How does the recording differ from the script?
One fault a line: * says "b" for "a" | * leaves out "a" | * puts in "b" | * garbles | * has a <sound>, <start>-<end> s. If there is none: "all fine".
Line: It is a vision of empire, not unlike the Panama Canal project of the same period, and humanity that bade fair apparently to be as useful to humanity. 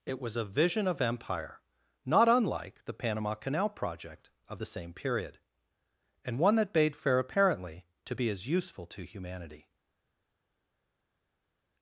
* says "was" for "is"
* says "one" for "humanity"